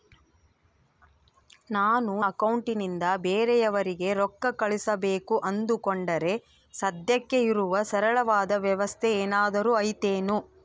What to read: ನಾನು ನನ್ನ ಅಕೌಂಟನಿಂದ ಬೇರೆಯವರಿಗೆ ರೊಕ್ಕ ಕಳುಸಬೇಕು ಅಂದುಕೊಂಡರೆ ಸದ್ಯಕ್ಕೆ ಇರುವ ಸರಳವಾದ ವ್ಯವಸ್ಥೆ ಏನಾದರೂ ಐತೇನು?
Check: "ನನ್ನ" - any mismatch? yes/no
yes